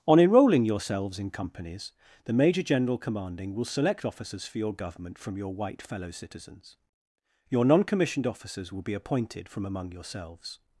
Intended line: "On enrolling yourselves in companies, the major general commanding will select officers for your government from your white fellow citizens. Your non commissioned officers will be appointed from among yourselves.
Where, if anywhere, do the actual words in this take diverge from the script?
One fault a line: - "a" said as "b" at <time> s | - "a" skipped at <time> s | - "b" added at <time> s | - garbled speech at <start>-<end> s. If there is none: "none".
none